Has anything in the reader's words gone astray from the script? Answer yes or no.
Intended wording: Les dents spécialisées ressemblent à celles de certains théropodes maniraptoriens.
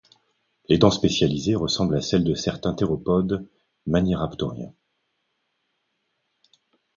no